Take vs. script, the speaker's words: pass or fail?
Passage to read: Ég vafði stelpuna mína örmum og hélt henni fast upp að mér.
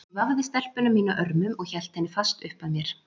pass